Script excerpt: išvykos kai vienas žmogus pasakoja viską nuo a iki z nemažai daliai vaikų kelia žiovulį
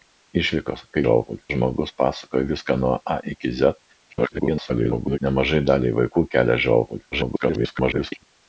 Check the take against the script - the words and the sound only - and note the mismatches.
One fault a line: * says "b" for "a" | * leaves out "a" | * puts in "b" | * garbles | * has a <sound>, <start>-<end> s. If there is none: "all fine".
* says "žiovulį" for "vienas"
* garbles
* garbles